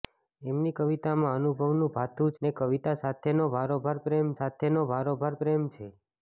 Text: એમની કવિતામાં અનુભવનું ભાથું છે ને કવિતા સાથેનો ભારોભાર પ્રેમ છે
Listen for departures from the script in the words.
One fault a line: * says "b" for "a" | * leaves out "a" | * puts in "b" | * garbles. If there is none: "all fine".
* leaves out "છે"
* puts in "સાથેનો ભારોભાર પ્રેમ"